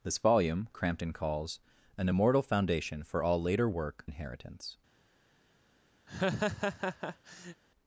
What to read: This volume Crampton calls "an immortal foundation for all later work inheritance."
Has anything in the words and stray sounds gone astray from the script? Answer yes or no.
yes